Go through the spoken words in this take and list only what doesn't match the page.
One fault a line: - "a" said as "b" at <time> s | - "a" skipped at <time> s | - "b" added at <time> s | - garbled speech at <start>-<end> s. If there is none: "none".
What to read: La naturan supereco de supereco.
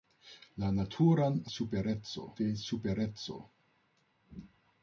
none